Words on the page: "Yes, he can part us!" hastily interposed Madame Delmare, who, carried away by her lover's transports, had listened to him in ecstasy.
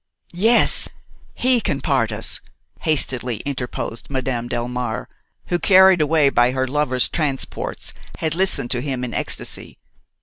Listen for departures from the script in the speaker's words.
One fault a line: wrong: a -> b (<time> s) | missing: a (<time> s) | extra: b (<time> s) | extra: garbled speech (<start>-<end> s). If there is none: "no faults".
no faults